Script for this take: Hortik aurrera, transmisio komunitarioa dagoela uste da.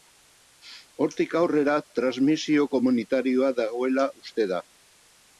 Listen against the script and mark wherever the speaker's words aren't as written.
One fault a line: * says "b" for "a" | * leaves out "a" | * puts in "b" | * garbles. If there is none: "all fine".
all fine